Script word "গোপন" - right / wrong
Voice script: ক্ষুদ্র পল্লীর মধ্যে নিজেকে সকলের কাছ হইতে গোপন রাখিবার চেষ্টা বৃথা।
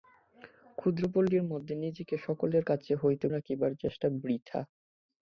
wrong